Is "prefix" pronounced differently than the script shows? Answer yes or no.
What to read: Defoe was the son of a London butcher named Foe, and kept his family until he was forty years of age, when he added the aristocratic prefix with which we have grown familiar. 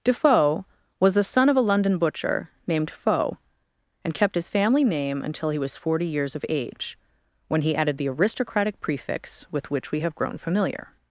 no